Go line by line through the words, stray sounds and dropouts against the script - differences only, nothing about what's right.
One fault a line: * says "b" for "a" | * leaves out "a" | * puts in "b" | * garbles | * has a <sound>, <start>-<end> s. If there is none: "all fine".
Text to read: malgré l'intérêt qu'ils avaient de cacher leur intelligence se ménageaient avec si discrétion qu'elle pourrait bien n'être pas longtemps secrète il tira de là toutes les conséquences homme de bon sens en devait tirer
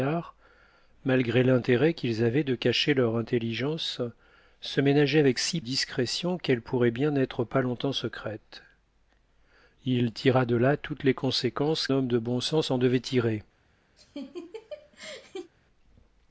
* has a laugh, 14.0-15.5 s